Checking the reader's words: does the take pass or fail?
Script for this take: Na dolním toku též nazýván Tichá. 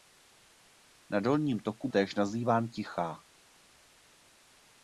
pass